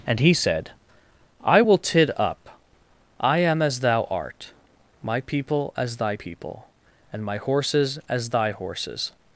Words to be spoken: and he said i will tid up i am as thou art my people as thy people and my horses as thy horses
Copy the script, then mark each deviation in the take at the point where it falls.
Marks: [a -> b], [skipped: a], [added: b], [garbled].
and he said i will tid up i am as thou art my people as thy people and my horses as thy horses